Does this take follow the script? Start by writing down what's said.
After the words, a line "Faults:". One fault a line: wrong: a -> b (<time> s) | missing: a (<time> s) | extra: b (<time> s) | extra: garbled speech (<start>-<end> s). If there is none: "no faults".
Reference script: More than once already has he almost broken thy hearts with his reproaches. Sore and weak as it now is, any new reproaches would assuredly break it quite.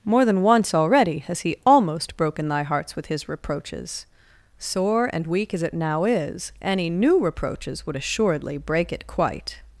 More than once already has he almost broken thy hearts with his reproaches. Sore and weak as it now is, any new reproaches would assuredly break it quite.
Faults:
no faults